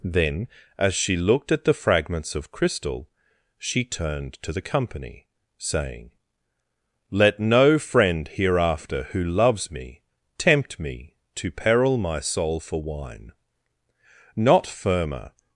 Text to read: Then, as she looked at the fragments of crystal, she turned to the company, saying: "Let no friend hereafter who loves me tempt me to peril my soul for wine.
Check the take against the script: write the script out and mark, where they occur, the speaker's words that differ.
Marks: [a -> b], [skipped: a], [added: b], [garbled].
Then, as she looked at the fragments of crystal, she turned to the company, saying: "Let no friend hereafter who loves me tempt me to peril my soul for wine. [added: Not firmer]